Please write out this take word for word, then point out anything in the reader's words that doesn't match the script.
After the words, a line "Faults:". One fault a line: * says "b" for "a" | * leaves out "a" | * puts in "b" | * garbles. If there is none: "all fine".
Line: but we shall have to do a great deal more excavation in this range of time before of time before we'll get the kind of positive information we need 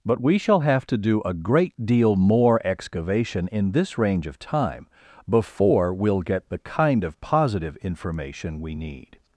but we shall have to do a great deal more excavation in this range of time before we'll get the kind of positive information we need
Faults:
* leaves out "of time before"